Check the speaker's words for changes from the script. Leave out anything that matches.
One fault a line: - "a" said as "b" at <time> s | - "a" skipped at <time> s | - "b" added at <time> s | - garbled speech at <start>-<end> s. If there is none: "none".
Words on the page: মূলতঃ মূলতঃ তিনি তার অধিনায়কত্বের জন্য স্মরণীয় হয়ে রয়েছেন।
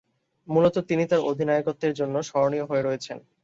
- "মূলতঃ" skipped at 0.8 s